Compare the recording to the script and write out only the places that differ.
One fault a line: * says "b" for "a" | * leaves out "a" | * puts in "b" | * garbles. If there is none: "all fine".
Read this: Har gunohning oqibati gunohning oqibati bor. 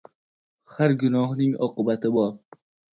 * leaves out "gunohning oqibati"